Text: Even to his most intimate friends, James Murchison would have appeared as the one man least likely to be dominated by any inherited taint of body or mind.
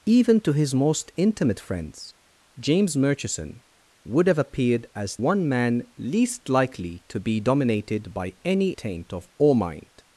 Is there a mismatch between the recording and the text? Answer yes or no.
yes